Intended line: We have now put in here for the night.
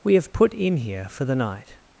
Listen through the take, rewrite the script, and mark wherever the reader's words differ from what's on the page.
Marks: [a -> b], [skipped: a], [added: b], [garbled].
We have [skipped: now] put in here for the night.